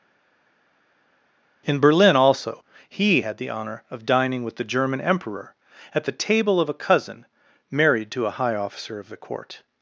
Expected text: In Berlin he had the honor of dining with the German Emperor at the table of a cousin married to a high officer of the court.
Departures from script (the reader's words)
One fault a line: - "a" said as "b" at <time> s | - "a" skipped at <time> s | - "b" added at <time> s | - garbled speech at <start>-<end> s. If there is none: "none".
- "also" added at 2.2 s